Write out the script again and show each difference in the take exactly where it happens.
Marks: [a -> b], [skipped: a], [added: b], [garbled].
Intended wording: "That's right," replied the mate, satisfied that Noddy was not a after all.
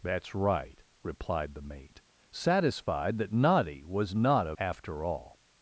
"That's right," replied the mate, satisfied that Noddy was not a after all.